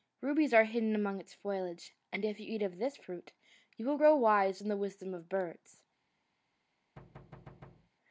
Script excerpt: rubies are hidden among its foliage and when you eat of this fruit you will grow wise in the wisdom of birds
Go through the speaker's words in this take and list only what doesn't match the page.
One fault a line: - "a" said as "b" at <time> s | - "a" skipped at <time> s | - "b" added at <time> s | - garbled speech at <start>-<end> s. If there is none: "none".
- "when" said as "if" at 2.2 s